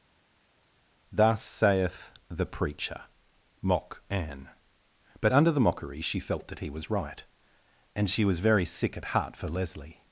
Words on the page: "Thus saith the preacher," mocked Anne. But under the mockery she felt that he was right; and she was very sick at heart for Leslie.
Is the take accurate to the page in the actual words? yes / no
no